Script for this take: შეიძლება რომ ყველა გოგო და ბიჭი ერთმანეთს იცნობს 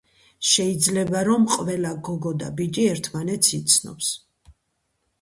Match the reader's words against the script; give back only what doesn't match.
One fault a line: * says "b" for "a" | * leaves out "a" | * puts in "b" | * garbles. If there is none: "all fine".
all fine